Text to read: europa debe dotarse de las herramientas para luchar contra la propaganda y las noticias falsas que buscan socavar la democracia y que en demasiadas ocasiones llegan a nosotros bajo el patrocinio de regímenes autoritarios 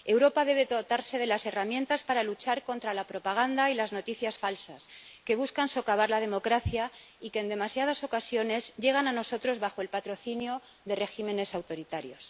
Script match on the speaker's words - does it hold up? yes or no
yes